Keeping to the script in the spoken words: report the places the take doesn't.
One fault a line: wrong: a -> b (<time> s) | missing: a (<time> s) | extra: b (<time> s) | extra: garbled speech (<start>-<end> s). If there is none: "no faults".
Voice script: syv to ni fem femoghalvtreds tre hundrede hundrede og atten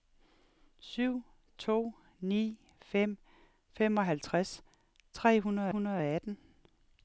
no faults